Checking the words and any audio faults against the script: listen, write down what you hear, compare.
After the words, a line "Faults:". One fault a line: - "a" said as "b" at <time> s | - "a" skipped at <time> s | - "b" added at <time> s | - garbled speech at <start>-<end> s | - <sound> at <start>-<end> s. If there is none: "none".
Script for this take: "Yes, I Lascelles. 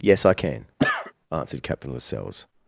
"Yes, I can," answered Captain Lascelles.
Faults:
- "can answered Captain" added at 0.3 s
- cough at 0.8-1.1 s